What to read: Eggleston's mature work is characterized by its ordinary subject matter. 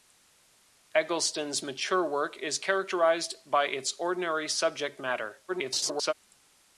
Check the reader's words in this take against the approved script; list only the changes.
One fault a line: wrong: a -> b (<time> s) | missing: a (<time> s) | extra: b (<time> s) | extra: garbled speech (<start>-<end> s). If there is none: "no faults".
extra: garbled speech (5.5-6.1 s)